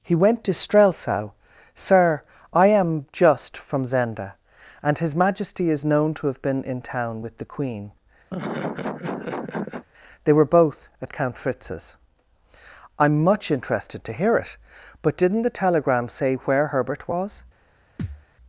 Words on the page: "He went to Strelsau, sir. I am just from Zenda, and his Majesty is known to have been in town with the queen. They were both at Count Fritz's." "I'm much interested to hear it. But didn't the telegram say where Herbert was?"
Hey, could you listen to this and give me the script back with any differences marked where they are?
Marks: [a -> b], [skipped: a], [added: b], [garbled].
"He went to Strelsau, sir. I am just from Zenda, and his Majesty is known to have been in town with the queen. They were both at Count Fritz's." "I'm much interested to hear it. But didn't the telegram say where Herbert was?"